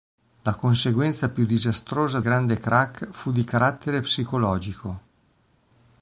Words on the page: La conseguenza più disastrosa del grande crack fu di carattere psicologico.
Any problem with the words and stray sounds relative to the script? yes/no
yes